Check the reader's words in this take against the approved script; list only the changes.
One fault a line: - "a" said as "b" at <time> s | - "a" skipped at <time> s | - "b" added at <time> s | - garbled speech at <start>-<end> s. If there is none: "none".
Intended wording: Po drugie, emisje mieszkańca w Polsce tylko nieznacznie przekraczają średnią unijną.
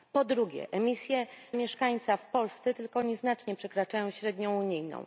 none